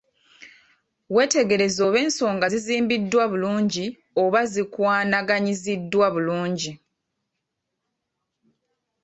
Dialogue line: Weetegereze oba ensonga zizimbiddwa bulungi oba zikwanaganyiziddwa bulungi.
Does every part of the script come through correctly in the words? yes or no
yes